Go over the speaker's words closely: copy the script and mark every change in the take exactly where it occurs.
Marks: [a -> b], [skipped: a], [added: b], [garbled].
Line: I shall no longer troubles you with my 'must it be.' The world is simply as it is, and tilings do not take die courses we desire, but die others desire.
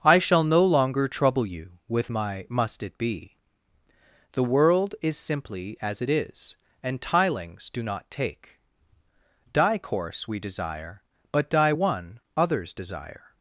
I shall no longer [troubles -> trouble] you with my 'must it be.' The world is simply as it is, and tilings do not take die [courses -> course] we desire, but die [added: one] others desire.